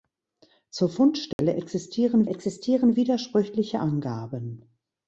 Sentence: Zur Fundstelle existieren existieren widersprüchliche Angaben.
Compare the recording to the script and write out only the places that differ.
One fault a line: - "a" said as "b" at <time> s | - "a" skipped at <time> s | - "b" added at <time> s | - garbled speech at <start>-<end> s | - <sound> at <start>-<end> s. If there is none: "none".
- dropout at 1.3-1.4 s